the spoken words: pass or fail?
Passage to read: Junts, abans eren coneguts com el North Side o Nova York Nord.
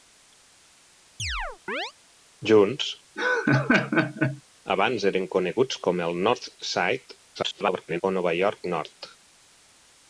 fail